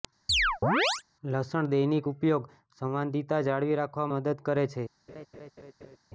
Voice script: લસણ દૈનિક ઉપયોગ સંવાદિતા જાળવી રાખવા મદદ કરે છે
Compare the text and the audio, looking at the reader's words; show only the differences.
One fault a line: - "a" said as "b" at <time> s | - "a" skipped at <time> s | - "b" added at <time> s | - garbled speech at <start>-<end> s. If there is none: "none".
none